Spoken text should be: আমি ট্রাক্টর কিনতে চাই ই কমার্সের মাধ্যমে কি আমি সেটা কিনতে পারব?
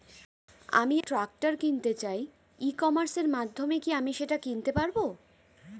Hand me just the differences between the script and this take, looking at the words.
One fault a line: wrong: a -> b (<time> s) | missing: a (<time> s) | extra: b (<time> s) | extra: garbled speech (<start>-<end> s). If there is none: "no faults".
no faults